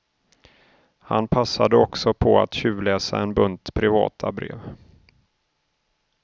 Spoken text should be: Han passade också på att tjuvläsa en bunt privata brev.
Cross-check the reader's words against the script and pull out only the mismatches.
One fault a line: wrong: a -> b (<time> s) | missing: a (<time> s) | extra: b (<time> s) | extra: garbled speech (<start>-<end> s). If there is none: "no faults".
no faults